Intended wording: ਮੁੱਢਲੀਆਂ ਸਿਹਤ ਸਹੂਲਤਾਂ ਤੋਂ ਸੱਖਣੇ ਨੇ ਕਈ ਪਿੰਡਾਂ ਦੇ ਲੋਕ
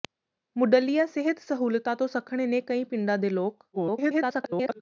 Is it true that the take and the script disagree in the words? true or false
true